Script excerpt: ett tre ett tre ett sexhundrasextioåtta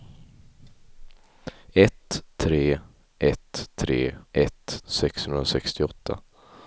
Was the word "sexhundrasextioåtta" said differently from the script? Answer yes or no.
no